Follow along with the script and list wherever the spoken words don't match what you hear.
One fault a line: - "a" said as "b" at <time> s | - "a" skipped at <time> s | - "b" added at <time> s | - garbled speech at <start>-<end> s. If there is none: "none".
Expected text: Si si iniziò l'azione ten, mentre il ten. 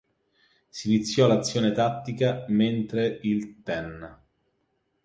- "si" skipped at 0.9 s
- "ten" said as "tattica" at 1.7 s